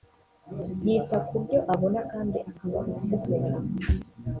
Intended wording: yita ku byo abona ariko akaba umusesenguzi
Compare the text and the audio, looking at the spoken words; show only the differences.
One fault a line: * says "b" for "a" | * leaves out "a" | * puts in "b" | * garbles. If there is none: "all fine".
* says "kandi" for "ariko"